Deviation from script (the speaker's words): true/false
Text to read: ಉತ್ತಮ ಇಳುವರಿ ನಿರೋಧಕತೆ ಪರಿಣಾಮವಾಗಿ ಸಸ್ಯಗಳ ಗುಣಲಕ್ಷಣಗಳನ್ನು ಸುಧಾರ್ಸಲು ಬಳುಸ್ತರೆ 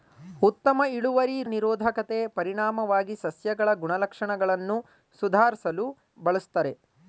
false